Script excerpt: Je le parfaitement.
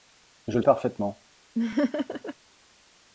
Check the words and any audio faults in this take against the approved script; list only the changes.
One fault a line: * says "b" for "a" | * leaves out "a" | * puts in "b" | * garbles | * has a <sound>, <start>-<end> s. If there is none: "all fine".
* has a laugh, 1.5-2.3 s